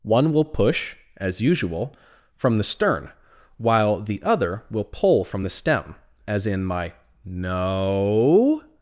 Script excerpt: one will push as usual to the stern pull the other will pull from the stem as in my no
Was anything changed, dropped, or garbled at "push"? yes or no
no